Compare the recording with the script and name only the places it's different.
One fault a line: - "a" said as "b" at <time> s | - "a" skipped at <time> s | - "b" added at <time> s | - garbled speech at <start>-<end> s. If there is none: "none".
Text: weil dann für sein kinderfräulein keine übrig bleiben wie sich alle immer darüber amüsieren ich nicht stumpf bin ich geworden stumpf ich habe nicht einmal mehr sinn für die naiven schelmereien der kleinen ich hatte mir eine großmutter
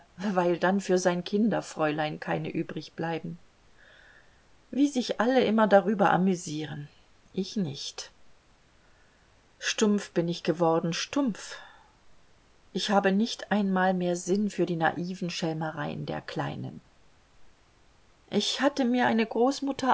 none